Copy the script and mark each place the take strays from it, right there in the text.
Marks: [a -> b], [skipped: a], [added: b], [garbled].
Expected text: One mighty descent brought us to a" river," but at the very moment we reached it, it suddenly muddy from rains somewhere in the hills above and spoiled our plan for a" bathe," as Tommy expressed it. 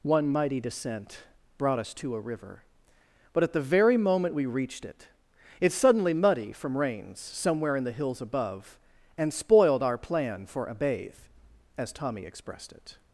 One mighty descent brought us to a" river," but at the very moment we reached it, it suddenly muddy from rains somewhere in the hills above and spoiled our plan for a" bathe," as Tommy expressed it.